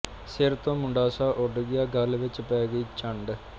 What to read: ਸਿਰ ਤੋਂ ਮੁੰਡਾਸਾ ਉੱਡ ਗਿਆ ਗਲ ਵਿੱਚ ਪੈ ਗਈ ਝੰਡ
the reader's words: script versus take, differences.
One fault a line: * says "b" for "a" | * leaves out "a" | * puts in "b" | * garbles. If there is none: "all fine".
all fine